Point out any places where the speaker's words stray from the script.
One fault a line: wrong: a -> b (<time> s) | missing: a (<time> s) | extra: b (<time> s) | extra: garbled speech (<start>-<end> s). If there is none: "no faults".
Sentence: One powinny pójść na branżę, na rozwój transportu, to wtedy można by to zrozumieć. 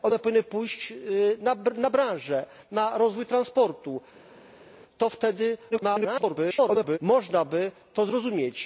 extra: garbled speech (5.7-7.0 s)